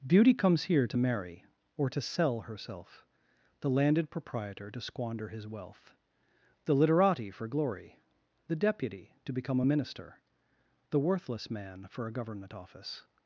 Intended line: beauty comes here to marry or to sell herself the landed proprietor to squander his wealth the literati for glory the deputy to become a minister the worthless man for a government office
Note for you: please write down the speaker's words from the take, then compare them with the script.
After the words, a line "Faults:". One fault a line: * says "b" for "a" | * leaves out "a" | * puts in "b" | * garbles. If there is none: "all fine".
beauty comes here to marry or to sell herself the landed proprietor to squander his wealth the literati for glory the deputy to become a minister the worthless man for a government office
Faults:
all fine